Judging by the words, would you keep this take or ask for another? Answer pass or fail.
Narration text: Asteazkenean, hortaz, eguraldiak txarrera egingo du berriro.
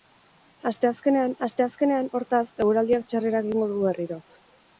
fail